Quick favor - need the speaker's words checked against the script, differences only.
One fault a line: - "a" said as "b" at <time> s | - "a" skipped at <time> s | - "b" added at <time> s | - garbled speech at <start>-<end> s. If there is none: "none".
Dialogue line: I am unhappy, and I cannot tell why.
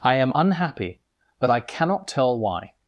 - "and" said as "but" at 1.4 s